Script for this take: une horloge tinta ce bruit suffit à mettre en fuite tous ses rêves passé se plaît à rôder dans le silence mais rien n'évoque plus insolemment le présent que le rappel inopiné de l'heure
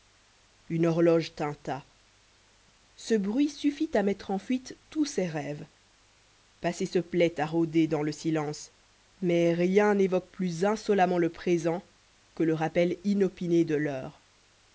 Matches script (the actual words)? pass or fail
pass